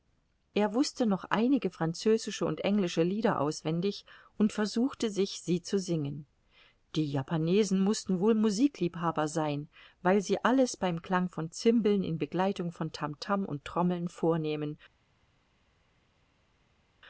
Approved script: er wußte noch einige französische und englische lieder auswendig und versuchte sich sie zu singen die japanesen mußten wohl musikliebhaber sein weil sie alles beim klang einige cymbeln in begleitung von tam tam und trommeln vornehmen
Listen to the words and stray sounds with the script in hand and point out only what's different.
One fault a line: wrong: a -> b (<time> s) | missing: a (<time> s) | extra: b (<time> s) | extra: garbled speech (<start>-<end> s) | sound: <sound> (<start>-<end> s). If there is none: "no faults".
wrong: einige -> von (11.3 s)